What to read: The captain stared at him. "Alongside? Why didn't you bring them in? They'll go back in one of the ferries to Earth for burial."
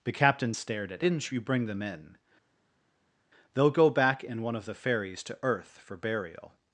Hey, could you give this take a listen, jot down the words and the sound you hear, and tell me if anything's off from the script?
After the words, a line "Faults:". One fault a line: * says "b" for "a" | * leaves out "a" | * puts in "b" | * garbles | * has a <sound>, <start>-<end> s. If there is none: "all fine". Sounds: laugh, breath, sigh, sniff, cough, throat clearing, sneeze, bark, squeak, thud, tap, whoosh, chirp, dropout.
The captain stared at didn't you bring them in? They'll go back in one of the ferries to Earth for burial."
Faults:
* leaves out "him Alongside Why"